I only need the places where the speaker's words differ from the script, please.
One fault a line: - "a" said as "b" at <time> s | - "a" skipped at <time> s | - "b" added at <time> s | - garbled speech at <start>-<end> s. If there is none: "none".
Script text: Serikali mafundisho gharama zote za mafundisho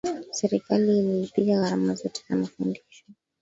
- "mafundisho" said as "ililipia" at 1.0 s